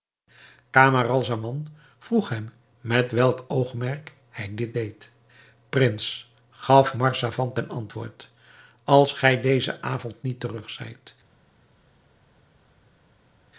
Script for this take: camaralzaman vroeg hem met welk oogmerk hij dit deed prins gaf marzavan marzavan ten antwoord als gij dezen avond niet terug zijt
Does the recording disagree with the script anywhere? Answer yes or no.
yes